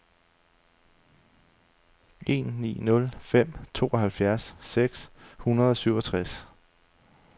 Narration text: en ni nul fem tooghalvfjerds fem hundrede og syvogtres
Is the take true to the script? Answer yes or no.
no